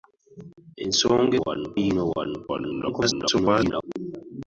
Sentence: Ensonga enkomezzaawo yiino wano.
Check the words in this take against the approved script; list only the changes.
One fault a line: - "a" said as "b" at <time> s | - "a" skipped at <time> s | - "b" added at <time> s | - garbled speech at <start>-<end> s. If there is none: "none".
- "enkomezzaawo" said as "wano" at 1.4 s
- garbled speech at 2.5-3.8 s